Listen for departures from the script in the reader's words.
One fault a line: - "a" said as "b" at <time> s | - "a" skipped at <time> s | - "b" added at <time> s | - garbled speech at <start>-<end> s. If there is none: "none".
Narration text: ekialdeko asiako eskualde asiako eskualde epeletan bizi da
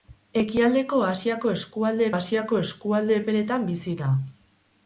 none